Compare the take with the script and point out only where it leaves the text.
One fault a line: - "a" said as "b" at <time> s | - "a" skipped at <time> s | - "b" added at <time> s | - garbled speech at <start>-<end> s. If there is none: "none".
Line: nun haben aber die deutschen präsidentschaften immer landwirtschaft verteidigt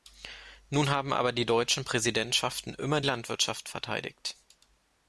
none